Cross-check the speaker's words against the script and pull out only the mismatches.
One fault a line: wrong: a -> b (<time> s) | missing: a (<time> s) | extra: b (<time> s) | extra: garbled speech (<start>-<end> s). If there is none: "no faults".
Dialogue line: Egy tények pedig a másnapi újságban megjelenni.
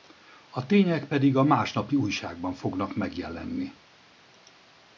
wrong: Egy -> A (0.5 s)
extra: fognak (2.5 s)